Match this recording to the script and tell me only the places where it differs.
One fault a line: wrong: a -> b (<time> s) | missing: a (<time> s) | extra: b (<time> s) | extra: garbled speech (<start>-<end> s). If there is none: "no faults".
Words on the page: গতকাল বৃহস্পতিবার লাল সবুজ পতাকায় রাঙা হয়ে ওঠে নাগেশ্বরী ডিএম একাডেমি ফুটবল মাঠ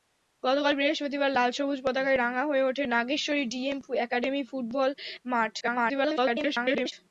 extra: garbled speech (5.6-6.9 s)